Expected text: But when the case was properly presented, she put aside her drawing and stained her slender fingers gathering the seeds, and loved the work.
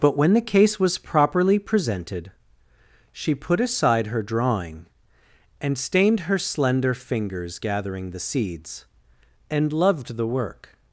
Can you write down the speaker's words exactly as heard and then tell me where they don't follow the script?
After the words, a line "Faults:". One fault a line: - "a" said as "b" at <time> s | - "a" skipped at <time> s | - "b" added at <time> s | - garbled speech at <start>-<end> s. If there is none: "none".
But when the case was properly presented, she put aside her drawing and stained her slender fingers gathering the seeds, and loved the work.
Faults:
none